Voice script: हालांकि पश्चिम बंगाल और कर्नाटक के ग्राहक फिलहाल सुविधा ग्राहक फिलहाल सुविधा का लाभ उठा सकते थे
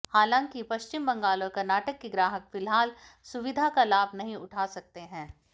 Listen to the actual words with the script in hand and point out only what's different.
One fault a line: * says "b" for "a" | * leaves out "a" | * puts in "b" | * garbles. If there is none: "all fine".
* leaves out "ग्राहक फिलहाल सुविधा"
* puts in "नहीं"
* says "हैं" for "थे"